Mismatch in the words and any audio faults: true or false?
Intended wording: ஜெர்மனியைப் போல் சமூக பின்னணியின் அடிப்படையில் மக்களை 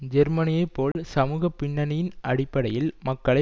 true